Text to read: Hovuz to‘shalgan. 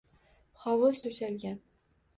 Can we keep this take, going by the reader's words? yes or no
yes